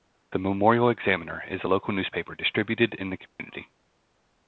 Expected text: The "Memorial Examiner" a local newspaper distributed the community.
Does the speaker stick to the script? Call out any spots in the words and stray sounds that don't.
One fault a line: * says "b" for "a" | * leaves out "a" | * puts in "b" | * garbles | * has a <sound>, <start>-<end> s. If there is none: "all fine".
* puts in "is"
* puts in "in"
* has a dropout, 3.3-3.4 s